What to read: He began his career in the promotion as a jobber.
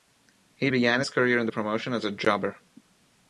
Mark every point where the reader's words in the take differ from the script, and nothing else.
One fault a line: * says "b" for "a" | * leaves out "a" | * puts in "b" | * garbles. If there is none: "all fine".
all fine